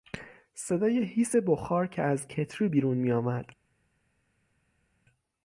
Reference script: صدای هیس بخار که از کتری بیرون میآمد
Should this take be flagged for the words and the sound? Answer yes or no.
no